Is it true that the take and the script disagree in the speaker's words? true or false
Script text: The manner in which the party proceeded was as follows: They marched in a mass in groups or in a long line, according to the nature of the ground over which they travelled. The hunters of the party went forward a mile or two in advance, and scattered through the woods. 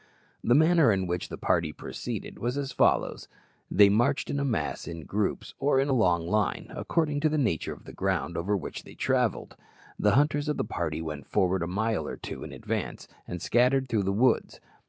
false